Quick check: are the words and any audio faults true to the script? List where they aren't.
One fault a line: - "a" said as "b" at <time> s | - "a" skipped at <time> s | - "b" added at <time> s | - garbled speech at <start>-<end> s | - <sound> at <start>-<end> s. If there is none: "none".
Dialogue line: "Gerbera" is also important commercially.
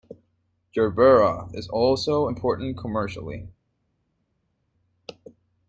none